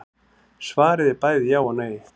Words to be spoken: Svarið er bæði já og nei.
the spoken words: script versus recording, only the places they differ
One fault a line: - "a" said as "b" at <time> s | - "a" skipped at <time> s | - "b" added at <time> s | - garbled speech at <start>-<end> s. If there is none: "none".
none